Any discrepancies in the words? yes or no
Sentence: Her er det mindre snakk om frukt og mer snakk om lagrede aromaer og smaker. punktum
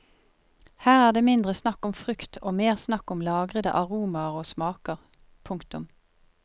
no